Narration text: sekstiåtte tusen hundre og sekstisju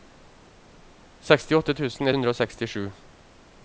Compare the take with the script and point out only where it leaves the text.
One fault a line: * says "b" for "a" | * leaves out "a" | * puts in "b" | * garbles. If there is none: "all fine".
all fine